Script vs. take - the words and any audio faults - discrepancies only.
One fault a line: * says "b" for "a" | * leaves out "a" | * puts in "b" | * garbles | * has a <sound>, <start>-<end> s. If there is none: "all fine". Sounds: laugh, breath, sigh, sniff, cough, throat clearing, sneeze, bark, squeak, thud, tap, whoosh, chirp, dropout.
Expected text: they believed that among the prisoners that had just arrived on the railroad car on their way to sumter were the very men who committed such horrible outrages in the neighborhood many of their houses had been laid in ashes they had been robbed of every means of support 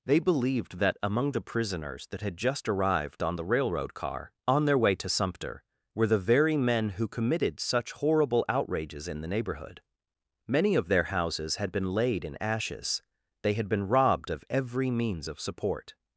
all fine